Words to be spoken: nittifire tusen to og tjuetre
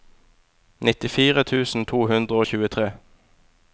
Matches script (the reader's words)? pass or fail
fail